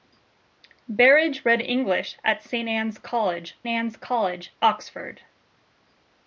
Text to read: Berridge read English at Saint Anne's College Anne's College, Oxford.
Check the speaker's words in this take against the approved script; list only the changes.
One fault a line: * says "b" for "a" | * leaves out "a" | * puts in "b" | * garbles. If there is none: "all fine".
all fine